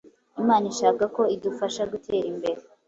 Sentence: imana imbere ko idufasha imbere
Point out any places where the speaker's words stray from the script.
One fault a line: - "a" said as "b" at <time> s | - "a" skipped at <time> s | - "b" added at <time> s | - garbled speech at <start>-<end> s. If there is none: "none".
- "imbere" said as "ishaka" at 0.7 s
- "gutera" added at 1.9 s